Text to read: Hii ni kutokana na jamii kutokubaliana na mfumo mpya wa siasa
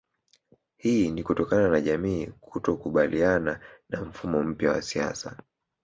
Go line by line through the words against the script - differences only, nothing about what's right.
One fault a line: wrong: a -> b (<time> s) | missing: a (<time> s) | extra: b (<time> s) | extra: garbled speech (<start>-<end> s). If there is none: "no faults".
no faults